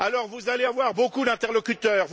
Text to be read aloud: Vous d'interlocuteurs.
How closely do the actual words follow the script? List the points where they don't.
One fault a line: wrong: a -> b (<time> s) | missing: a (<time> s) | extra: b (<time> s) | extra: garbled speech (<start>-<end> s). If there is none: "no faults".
extra: allez avoir beaucoup (0.5 s)